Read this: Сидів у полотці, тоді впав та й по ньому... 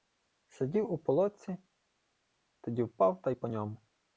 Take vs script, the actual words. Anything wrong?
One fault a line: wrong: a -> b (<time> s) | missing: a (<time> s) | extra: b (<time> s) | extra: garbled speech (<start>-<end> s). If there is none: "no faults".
no faults